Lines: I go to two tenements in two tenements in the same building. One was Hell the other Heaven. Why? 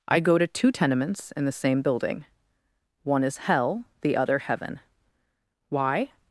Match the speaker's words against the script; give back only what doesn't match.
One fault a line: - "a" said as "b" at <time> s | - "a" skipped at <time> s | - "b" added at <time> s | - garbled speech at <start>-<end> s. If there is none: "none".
- "two tenements in" skipped at 1.4 s
- "was" said as "is" at 3.2 s